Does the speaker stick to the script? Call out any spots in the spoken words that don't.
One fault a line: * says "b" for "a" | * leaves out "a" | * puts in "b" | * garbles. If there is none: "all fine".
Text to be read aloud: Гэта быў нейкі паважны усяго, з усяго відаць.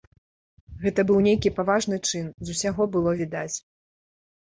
* says "чын" for "усяго"
* puts in "было"